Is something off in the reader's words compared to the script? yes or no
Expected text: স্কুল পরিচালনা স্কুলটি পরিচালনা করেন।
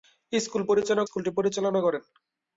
no